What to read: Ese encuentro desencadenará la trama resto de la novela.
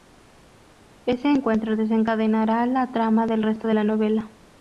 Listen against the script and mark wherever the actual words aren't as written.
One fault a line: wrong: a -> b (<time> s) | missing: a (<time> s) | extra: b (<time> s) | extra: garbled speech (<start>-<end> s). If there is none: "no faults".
extra: del (3.3 s)